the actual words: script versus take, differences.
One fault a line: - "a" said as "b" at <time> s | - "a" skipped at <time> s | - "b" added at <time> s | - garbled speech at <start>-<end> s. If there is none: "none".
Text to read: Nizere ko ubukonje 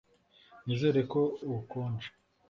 none